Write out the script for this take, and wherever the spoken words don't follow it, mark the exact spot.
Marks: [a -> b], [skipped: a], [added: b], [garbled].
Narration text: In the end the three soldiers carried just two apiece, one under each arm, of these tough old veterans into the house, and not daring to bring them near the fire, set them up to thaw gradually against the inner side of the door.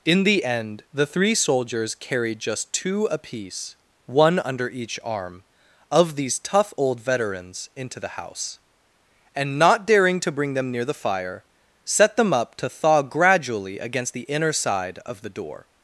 In the end the three soldiers carried just two apiece, one under each arm, of these tough old veterans into the house, and not daring to bring them near the fire, set them up to thaw gradually against the inner side of the door.